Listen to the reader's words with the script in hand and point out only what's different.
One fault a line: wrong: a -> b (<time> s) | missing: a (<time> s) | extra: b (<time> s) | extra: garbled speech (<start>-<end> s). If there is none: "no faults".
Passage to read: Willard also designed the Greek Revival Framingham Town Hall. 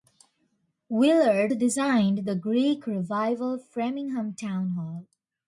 missing: also (1.5 s)